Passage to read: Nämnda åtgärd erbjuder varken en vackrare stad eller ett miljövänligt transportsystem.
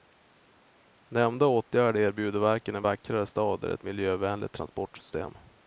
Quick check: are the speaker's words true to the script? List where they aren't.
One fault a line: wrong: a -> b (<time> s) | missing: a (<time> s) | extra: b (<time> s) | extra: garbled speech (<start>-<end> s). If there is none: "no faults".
no faults